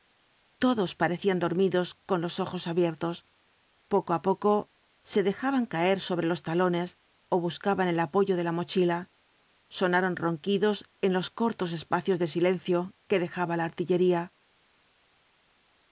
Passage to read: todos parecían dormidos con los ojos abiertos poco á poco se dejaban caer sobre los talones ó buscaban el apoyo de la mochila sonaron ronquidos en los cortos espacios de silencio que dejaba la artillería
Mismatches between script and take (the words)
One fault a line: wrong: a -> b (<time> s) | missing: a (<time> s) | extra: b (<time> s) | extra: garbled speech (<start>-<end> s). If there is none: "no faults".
no faults